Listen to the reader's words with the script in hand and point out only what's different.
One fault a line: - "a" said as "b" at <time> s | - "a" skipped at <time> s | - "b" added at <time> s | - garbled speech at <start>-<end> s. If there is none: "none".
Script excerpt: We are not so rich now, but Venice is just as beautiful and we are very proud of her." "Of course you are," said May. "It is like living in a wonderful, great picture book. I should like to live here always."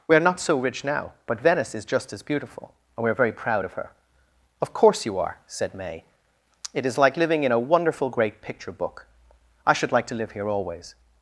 none